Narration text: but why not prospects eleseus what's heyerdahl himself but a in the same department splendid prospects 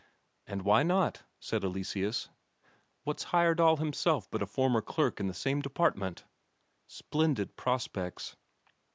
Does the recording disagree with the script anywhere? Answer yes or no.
yes